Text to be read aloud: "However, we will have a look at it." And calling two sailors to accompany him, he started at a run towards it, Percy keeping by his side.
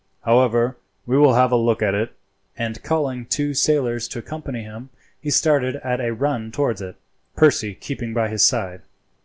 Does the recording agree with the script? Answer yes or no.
yes